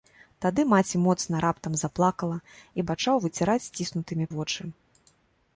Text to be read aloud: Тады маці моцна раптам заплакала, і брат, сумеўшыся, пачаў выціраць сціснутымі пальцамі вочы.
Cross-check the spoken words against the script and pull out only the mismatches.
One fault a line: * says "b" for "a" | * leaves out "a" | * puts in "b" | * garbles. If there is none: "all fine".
* leaves out "брат сумеўшыся"
* leaves out "пальцамі"